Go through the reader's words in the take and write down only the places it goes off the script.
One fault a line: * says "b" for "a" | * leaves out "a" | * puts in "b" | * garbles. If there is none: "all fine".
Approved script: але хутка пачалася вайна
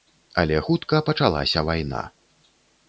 all fine